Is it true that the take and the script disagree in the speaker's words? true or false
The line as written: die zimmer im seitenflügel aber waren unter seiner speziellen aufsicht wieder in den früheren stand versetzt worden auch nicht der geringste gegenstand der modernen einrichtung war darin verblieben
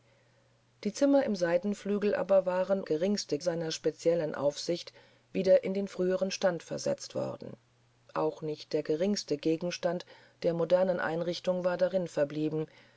true